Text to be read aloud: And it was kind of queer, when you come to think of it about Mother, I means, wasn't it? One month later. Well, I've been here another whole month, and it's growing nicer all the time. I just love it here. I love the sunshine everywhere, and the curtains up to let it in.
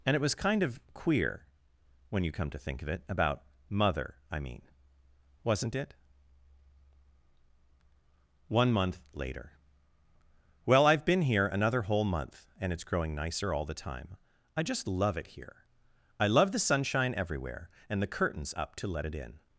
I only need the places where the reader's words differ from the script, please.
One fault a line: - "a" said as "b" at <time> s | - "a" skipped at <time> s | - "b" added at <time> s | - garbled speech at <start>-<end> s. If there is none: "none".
- "means" said as "mean" at 4.4 s